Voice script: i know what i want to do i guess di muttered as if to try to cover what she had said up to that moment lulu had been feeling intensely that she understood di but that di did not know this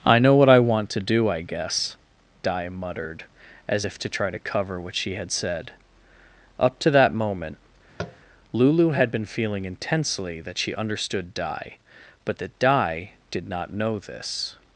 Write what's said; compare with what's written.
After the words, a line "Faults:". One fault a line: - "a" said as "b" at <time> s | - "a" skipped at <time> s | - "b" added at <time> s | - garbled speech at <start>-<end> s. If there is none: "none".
i know what i want to do i guess di muttered as if to try to cover what she had said up to that moment lulu had been feeling intensely that she understood di but that di did not know this
Faults:
none